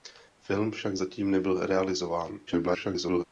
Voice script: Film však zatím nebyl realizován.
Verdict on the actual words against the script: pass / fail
fail